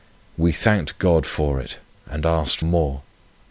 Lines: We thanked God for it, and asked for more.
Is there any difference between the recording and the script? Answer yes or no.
yes